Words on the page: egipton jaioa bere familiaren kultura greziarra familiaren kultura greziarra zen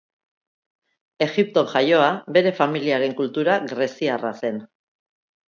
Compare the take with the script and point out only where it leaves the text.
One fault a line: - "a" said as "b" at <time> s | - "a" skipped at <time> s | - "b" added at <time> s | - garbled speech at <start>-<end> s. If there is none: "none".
- "familiaren kultura greziarra" skipped at 4.3 s